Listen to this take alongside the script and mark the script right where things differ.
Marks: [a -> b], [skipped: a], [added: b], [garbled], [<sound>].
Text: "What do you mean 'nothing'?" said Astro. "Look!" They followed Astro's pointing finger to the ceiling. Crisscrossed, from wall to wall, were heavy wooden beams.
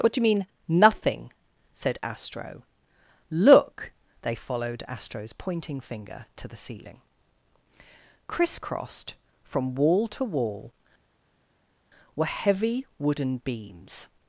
"What do you mean 'nothing'?" said Astro. "Look!" They followed Astro's pointing finger to the ceiling. Crisscrossed, from wall to wall, were heavy wooden beams.